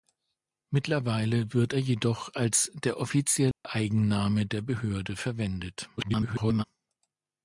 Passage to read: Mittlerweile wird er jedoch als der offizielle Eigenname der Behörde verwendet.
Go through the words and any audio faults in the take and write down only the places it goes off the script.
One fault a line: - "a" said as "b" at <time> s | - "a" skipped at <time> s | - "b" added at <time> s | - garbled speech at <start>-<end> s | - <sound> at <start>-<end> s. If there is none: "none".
- dropout at 3.5-3.6 s
- garbled speech at 6.0-6.6 s